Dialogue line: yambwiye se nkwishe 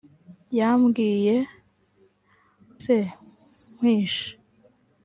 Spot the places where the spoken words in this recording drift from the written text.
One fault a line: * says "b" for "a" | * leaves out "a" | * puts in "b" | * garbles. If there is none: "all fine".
all fine